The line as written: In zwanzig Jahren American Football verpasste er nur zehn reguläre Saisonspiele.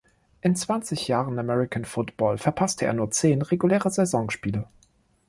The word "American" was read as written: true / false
true